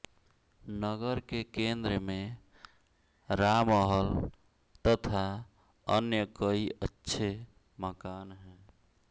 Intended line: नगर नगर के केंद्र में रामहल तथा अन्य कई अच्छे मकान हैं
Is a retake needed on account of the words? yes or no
yes